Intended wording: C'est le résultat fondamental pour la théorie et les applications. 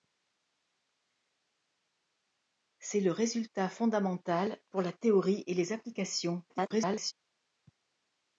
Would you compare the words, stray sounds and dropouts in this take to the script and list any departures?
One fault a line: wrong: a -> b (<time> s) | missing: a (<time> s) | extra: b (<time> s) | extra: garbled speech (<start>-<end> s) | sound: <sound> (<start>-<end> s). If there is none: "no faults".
extra: garbled speech (6.5-7.1 s)